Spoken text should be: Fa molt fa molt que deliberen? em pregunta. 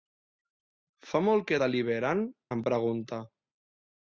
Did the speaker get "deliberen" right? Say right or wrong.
right